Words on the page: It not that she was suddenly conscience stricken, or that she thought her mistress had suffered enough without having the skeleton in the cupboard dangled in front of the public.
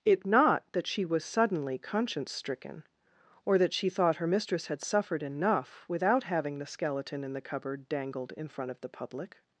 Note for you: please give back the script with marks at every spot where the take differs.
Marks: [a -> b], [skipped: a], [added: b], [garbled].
It not that she was suddenly conscience stricken, or that she thought her mistress had suffered enough without having the skeleton in the cupboard dangled in front of the public.